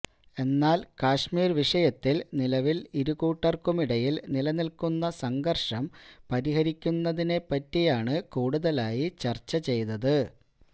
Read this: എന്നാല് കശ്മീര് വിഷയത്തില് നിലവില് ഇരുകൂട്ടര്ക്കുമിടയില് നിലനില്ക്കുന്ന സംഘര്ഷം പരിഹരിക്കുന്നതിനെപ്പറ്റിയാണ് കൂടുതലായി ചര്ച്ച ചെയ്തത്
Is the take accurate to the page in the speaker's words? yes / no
yes